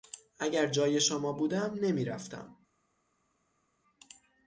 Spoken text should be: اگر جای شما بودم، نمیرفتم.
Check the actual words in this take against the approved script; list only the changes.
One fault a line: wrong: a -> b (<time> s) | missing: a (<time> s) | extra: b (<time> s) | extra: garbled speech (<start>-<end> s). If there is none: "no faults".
no faults